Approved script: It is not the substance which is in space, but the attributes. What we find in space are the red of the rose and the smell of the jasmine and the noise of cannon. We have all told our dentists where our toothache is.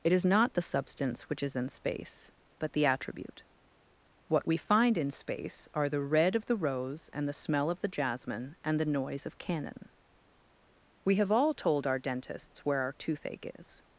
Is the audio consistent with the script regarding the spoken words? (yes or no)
no